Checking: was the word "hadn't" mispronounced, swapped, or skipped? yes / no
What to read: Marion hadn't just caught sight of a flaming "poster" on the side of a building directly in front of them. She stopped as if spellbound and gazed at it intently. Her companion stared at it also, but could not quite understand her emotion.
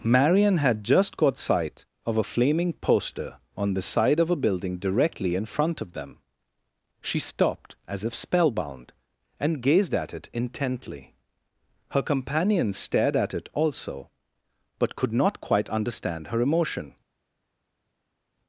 yes